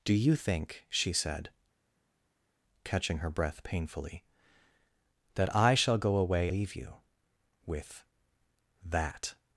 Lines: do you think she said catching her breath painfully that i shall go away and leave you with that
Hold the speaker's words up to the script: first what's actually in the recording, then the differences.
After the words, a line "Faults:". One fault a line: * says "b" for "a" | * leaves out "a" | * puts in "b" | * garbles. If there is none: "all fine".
do you think she said catching her breath painfully that i shall go away leave you with that
Faults:
* leaves out "and"